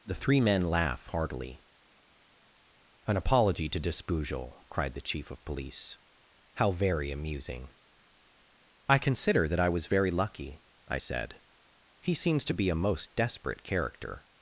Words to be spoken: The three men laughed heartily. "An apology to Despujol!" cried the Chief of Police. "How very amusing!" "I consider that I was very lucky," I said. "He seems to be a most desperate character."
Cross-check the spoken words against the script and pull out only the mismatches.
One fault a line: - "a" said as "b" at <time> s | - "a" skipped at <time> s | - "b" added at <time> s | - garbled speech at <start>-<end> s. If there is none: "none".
- "laughed" said as "laugh" at 0.6 s